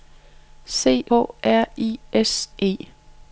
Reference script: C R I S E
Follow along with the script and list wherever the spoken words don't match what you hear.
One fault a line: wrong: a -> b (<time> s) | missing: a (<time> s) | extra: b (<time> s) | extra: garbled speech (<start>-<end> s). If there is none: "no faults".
no faults